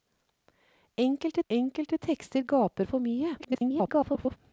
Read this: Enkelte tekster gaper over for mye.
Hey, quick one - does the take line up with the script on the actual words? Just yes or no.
no